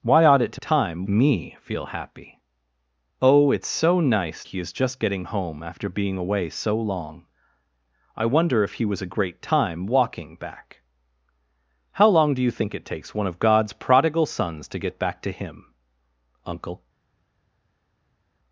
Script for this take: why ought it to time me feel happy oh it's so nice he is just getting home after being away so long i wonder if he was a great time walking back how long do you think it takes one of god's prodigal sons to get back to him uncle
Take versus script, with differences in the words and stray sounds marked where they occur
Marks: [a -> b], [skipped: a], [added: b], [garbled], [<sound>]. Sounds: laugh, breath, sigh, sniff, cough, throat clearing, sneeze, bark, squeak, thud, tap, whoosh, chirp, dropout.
why ought it to time me feel happy oh it's so nice he is just getting home after being away so long i wonder if he was a great time walking back how long do you think it takes one of god's prodigal sons to get back to him uncle